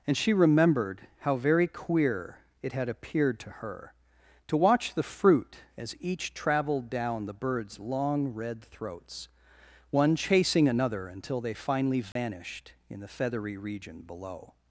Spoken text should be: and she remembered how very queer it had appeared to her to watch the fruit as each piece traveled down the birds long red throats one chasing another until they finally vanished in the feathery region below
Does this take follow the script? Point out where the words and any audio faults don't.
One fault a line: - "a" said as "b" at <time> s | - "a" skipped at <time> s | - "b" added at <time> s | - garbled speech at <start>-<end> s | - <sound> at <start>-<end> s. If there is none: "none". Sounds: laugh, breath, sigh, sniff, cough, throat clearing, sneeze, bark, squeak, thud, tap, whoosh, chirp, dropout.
- "piece" skipped at 6.3 s
- dropout at 12.1-12.2 s